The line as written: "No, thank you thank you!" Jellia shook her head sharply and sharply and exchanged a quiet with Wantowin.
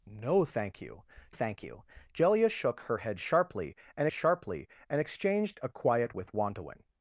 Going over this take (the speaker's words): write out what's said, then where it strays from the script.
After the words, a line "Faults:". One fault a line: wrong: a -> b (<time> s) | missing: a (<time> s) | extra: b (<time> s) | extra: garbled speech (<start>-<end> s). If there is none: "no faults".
"No, thank you thank you!" Jellia shook her head sharply and sharply and exchanged a quiet with Wantowin.
Faults:
no faults